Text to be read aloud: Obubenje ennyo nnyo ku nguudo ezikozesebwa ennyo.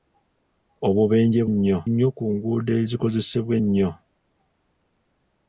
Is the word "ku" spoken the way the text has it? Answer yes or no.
yes